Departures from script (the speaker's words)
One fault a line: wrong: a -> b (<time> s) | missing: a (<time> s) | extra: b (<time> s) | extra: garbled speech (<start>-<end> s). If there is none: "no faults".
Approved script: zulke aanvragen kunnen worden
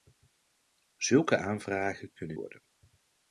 no faults